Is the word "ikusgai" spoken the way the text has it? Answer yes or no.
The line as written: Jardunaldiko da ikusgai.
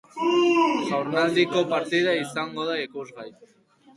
yes